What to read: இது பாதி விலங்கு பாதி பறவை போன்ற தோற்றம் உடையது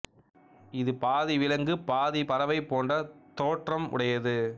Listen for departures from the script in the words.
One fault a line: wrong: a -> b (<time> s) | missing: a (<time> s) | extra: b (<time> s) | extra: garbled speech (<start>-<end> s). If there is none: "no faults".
no faults